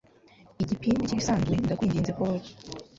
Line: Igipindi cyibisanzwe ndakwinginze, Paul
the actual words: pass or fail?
pass